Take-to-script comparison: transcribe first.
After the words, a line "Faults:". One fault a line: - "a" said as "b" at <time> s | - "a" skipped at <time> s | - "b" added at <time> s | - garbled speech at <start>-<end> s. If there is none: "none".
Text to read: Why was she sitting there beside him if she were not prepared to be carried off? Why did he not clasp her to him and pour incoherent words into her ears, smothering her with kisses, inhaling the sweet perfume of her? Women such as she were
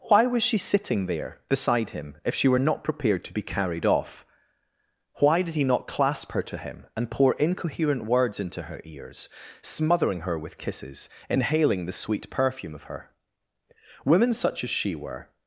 Why was she sitting there beside him if she were not prepared to be carried off? Why did he not clasp her to him and pour incoherent words into her ears, smothering her with kisses, inhaling the sweet perfume of her? Women such as she were
Faults:
none